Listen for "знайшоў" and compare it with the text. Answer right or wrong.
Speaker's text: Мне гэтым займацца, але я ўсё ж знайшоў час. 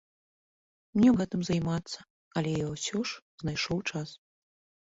right